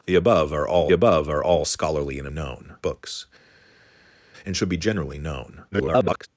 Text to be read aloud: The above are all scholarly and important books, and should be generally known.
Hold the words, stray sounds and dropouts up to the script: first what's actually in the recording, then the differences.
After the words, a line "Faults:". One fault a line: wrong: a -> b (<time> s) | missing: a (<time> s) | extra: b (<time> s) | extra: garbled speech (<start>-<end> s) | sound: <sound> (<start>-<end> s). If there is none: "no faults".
The above are all above are all scholarly and known books, and should be generally known. [garbled]
Faults:
extra: above are all (0.9 s)
wrong: important -> known (2.3 s)
extra: garbled speech (5.7-6.3 s)